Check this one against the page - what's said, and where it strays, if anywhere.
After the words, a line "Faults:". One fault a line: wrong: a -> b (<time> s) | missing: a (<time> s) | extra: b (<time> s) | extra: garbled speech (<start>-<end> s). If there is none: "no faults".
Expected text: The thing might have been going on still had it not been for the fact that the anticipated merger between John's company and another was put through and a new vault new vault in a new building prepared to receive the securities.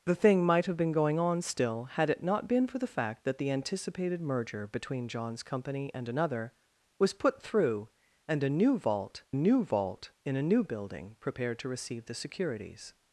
The thing might have been going on still had it not been for the fact that the anticipated merger between John's company and another was put through and a new vault new vault in a new building prepared to receive the securities.
Faults:
no faults